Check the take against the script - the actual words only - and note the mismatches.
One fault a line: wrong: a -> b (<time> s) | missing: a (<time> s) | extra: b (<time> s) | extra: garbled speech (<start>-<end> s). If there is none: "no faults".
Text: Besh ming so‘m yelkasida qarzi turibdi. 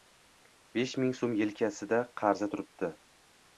no faults